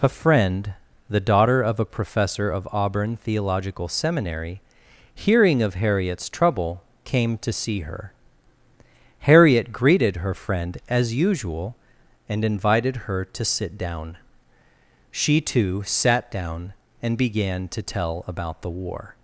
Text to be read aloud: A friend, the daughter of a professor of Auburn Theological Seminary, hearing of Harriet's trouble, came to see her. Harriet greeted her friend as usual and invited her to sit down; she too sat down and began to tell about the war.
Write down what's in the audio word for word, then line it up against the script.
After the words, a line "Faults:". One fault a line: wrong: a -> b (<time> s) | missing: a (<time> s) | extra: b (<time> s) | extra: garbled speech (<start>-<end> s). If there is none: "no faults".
A friend, the daughter of a professor of Auburn Theological Seminary, hearing of Harriet's trouble, came to see her. Harriet greeted her friend as usual and invited her to sit down; she too sat down and began to tell about the war.
Faults:
no faults